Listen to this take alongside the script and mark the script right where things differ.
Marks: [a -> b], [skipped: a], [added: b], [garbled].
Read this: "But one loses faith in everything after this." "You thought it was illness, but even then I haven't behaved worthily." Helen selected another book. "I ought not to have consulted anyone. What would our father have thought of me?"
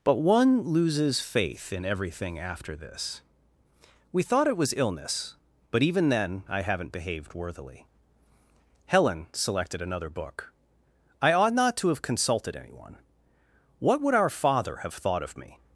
"But one loses faith in everything after this." ["You -> We] thought it was illness, but even then I haven't behaved worthily." Helen selected another book. "I ought not to have consulted anyone. What would our father have thought of me?"